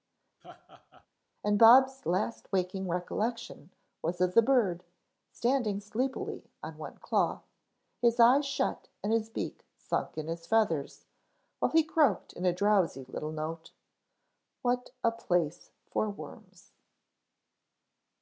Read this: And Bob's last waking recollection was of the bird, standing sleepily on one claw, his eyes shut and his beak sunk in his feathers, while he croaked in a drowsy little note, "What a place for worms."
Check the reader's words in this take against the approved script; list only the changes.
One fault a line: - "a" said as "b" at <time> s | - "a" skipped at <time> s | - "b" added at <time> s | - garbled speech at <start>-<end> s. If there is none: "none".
none